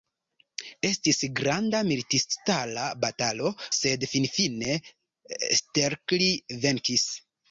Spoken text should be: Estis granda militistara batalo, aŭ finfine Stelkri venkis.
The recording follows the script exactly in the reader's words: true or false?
false